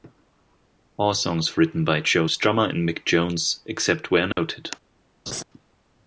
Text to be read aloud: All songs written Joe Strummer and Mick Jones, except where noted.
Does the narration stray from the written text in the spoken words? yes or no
yes